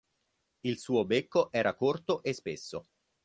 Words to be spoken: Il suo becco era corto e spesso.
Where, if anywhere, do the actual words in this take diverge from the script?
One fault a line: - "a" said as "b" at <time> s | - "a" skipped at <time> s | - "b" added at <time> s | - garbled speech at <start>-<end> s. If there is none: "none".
none